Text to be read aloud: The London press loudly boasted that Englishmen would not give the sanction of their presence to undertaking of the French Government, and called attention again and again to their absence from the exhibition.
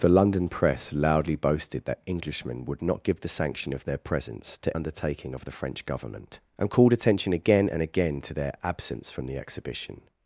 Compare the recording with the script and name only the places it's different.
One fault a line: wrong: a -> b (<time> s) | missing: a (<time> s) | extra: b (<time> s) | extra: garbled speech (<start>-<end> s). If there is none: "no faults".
no faults